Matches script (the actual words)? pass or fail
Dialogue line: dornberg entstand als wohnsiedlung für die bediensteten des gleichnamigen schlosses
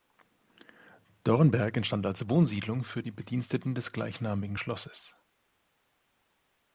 pass